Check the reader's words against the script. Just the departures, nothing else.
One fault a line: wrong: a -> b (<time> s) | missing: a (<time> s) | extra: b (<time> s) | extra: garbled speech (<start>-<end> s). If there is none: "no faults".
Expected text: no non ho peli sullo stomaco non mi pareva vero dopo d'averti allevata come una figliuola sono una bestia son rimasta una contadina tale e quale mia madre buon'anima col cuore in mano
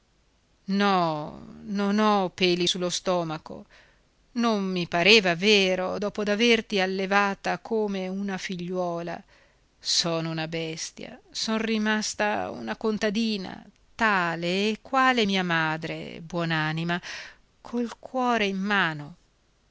no faults